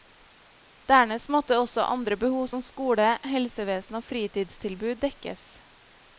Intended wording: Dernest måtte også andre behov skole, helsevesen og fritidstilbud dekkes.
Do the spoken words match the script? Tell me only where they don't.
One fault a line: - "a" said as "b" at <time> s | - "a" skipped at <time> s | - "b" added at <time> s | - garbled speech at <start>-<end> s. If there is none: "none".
- "som" added at 2.5 s